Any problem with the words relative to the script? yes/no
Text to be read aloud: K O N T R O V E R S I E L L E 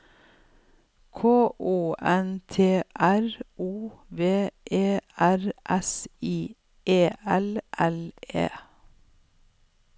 no